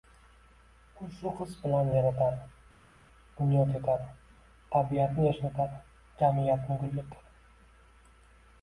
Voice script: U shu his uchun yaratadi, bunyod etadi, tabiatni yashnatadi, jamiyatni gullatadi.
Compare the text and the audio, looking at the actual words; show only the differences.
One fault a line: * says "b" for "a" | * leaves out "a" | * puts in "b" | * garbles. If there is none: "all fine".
* says "bilan" for "uchun"